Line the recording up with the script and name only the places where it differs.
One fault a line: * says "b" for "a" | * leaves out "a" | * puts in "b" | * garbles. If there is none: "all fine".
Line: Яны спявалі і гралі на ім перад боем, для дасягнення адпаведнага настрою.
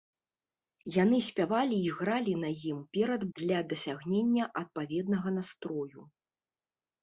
* leaves out "боем"